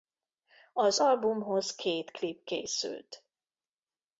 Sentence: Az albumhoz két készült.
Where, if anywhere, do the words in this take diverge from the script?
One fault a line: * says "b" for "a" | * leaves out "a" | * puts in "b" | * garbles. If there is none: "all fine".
* puts in "klip"